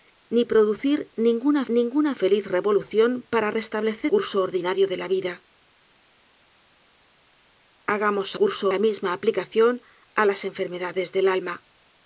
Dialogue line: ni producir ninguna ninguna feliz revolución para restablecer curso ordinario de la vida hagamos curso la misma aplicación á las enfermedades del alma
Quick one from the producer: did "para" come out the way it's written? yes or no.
yes